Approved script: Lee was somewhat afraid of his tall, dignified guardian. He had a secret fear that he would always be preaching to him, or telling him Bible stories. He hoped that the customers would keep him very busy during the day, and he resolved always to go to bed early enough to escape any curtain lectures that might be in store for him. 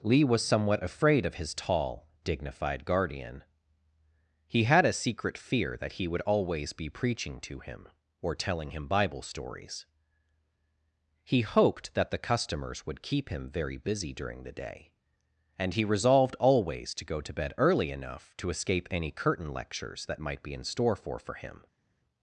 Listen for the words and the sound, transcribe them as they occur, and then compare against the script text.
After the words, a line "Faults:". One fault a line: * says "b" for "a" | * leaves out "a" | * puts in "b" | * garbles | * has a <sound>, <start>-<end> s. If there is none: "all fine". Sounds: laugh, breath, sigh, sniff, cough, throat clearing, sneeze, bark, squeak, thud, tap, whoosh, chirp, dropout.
Lee was somewhat afraid of his tall, dignified guardian. He had a secret fear that he would always be preaching to him, or telling him Bible stories. He hoped that the customers would keep him very busy during the day, and he resolved always to go to bed early enough to escape any curtain lectures that might be in store for for him.
Faults:
* puts in "for"